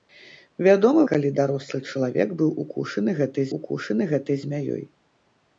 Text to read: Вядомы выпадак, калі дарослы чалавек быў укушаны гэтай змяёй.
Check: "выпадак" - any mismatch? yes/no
yes